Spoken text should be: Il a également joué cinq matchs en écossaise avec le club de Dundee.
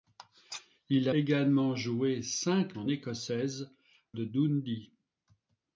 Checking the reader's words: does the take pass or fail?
fail